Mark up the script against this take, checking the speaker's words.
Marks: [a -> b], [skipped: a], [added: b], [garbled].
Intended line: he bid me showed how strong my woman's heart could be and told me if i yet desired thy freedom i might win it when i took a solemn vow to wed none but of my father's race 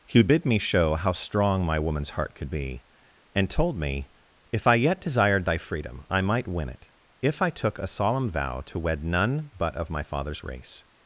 he bid me [showed -> show] how strong my woman's heart could be and told me if i yet desired thy freedom i might win it [when -> if] i took a solemn vow to wed none but of my father's race